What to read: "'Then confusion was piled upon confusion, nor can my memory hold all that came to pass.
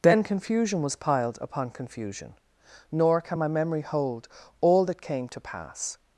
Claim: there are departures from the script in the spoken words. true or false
false